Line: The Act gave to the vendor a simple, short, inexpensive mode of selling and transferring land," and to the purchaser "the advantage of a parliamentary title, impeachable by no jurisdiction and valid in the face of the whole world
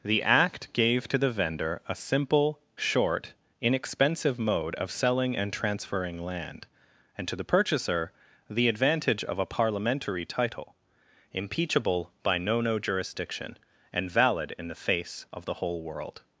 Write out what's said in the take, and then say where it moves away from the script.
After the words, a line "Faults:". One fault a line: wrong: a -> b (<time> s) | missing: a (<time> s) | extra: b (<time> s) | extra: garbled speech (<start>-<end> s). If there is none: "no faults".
The Act gave to the vendor a simple, short, inexpensive mode of selling and transferring land," and to the purchaser "the advantage of a parliamentary title, impeachable by no no jurisdiction and valid in the face of the whole world
Faults:
extra: no (12.6 s)